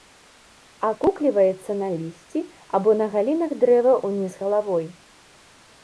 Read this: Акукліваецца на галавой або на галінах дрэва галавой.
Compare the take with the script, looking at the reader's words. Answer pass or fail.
fail